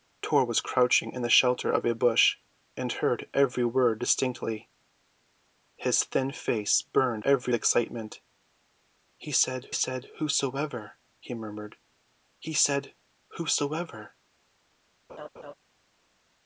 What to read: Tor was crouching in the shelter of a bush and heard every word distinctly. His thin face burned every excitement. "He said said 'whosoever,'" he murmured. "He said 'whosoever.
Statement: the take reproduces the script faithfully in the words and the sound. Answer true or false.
false